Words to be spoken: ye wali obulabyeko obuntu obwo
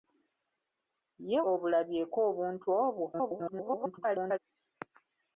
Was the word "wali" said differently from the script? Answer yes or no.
yes